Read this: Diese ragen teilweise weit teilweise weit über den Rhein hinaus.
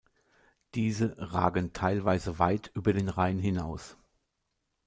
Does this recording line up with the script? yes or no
no